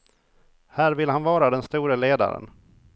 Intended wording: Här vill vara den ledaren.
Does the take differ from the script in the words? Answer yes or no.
yes